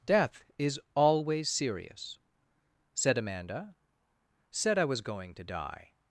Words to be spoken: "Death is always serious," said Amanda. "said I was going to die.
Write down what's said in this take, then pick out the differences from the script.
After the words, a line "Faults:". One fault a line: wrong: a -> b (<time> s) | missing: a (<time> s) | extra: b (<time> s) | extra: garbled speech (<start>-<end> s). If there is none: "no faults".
"Death is always serious," said Amanda. "said I was going to die.
Faults:
no faults